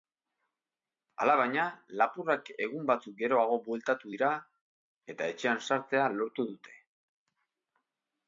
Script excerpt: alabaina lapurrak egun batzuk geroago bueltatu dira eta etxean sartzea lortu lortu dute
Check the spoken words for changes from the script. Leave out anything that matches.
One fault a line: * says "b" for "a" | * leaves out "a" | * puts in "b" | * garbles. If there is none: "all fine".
* leaves out "lortu"